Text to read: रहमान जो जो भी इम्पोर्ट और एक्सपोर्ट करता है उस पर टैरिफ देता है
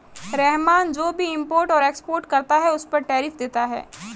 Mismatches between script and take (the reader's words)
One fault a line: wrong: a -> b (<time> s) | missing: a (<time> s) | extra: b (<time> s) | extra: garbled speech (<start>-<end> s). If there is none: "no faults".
missing: जो (1.1 s)